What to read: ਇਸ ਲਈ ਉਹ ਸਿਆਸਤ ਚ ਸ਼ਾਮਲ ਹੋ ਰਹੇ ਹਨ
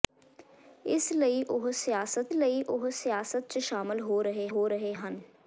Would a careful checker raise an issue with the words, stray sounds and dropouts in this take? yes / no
yes